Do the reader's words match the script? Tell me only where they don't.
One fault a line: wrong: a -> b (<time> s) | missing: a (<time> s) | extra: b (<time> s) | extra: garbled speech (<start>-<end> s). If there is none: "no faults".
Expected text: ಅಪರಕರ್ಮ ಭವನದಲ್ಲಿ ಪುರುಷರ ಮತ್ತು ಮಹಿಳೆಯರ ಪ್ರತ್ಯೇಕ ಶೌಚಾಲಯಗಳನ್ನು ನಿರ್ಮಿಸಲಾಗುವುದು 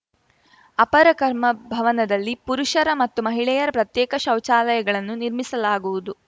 no faults